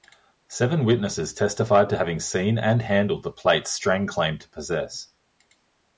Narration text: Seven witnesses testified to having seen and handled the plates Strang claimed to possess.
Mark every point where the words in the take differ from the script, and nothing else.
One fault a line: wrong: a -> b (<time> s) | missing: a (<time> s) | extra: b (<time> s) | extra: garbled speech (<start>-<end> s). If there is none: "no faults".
no faults